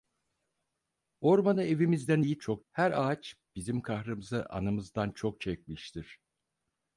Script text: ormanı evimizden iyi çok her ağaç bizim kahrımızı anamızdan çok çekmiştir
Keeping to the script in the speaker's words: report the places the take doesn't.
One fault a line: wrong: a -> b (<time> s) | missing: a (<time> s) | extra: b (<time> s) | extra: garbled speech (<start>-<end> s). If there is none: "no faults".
no faults